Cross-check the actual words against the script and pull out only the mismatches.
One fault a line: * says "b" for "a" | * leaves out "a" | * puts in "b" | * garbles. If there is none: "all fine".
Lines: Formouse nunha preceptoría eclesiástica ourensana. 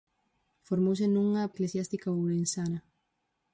* leaves out "preceptoría"